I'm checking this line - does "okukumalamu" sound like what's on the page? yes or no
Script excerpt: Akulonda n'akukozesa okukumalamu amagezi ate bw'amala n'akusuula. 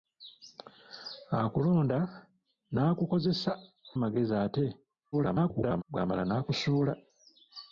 no